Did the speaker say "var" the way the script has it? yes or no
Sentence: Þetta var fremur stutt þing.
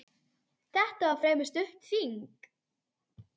yes